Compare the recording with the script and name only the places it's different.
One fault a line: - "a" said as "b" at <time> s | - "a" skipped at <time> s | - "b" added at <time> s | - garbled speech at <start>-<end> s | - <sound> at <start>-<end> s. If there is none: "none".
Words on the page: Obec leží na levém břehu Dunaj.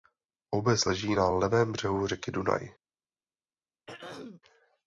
- "řeky" added at 2.1 s
- throat clearing at 3.9-4.4 s